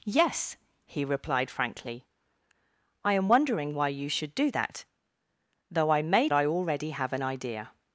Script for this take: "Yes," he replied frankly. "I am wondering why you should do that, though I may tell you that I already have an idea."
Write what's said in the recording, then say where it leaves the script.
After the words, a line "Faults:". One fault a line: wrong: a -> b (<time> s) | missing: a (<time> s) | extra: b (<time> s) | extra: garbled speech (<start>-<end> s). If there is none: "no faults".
"Yes," he replied frankly. "I am wondering why you should do that, though I may I already have an idea."
Faults:
missing: tell you that (6.3 s)